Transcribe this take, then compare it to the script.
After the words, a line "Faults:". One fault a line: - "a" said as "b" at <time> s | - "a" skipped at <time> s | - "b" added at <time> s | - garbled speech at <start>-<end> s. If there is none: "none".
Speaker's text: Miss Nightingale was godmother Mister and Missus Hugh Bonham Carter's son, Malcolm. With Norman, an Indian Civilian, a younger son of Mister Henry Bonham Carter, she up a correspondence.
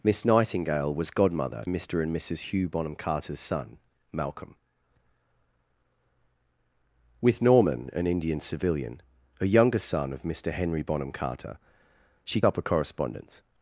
Miss Nightingale was godmother Mister and Missus Hugh Bonham Carter's son, Malcolm. With Norman, an Indian Civilian, a younger son of Mister Henry Bonham Carter, she up a correspondence.
Faults:
none